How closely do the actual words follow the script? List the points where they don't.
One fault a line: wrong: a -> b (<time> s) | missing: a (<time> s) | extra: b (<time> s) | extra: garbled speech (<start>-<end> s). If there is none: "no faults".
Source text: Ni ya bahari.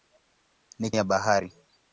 no faults